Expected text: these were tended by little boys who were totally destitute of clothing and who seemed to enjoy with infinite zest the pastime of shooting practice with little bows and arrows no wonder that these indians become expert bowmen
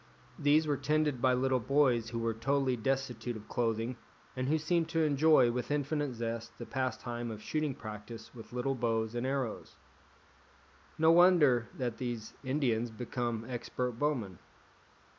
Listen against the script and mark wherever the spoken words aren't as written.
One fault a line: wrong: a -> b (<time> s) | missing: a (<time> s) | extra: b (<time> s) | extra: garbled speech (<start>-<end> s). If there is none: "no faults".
no faults